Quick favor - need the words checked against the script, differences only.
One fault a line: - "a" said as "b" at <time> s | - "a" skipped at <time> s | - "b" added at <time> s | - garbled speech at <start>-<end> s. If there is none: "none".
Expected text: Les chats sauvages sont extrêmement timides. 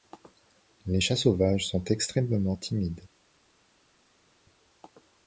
none